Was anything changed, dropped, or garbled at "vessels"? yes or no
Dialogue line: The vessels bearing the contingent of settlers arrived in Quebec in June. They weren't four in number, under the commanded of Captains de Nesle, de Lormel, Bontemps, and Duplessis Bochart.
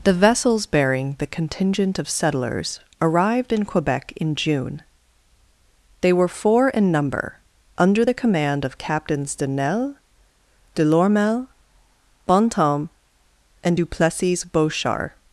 no